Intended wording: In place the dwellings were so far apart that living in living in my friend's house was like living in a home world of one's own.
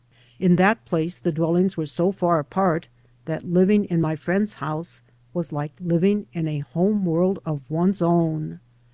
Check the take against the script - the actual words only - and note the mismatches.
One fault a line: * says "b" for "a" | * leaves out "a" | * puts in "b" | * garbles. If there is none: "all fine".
* puts in "that"
* leaves out "living in"